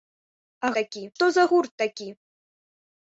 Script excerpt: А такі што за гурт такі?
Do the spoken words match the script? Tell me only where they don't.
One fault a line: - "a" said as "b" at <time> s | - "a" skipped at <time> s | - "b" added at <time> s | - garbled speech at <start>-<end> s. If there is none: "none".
none